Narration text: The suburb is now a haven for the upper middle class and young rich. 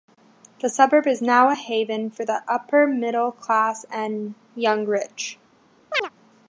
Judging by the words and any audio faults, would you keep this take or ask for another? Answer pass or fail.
fail